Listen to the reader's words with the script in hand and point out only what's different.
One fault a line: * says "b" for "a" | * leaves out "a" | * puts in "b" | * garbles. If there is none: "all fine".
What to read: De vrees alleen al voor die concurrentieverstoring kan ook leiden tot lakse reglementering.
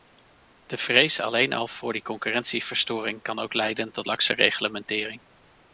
all fine